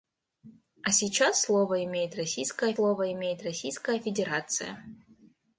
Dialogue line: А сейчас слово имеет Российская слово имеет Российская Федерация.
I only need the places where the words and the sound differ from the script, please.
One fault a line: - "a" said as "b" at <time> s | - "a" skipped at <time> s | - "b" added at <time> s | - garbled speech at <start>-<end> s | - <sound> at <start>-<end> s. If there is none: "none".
none